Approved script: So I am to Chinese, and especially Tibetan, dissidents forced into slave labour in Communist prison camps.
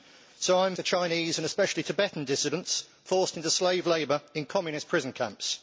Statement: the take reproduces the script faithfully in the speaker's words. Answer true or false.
true